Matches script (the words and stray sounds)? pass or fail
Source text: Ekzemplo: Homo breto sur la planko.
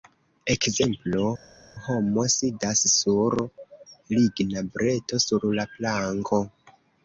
fail